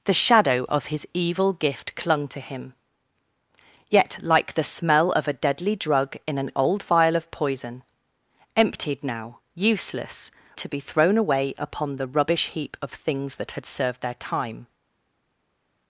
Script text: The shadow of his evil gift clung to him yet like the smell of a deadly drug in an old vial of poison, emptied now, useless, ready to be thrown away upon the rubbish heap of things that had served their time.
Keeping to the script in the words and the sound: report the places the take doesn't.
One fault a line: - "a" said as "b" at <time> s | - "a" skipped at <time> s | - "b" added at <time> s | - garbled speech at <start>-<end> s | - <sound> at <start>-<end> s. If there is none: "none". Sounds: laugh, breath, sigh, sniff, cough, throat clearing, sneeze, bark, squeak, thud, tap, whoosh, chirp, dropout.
- "ready" skipped at 10.3 s